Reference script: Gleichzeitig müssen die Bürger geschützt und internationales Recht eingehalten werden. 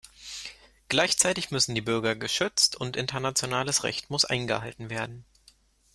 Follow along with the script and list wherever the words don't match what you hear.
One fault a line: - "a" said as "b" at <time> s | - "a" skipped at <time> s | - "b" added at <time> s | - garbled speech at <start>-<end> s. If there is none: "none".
- "muss" added at 4.1 s